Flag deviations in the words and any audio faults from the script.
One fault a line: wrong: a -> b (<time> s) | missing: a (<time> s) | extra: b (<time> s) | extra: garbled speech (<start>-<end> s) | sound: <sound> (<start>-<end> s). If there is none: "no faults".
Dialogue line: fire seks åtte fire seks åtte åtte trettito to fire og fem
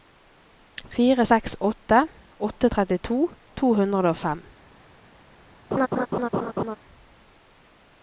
missing: fire seks (2.0 s)
missing: åtte (2.7 s)
wrong: fire -> hundre (3.8 s)
sound: laugh (5.7-6.8 s)